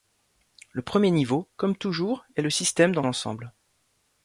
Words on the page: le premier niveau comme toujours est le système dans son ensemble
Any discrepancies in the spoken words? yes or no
yes